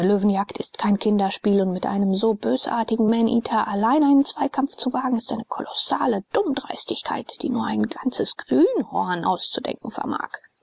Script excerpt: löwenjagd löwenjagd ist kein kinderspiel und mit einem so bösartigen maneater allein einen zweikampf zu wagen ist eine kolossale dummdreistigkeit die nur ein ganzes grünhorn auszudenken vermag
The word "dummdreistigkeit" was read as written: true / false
true